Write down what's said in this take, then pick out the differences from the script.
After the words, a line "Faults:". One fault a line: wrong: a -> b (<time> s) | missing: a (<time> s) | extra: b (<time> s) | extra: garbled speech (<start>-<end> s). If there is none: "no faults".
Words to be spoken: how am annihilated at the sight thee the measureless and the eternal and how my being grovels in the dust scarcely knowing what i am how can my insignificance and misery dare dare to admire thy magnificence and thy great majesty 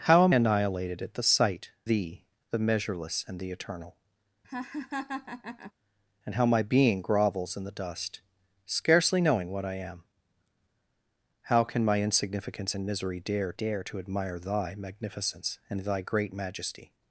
how am annihilated at the sight thee the measureless and the eternal and how my being grovels in the dust scarcely knowing what i am how can my insignificance and misery dare dare to admire thy magnificence and thy great majesty
Faults:
no faults